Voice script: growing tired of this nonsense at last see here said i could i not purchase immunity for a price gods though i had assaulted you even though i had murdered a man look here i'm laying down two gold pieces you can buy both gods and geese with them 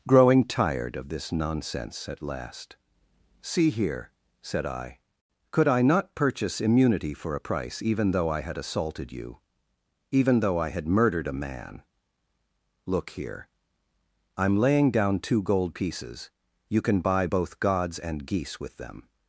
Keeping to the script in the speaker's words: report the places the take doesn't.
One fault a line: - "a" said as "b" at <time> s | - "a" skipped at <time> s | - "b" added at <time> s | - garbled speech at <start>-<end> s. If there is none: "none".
- "gods" said as "even" at 7.8 s